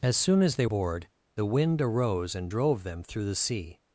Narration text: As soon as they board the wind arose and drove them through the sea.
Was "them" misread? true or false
false